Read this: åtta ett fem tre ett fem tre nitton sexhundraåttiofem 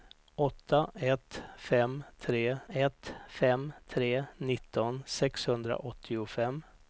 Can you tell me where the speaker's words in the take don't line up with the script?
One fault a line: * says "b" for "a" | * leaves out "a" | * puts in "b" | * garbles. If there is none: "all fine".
all fine